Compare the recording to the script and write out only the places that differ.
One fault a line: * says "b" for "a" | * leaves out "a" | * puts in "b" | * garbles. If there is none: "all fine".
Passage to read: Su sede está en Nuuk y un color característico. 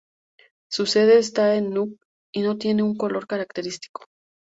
* puts in "no tiene"